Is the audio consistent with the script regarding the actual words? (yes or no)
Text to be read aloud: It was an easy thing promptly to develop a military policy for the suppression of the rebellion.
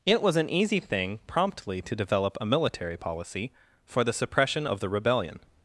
yes